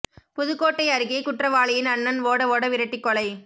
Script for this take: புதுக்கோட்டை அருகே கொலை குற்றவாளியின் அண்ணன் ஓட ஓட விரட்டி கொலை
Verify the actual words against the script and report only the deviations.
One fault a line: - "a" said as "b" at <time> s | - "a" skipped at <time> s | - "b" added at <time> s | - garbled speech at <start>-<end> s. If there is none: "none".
- "கொலை" skipped at 1.2 s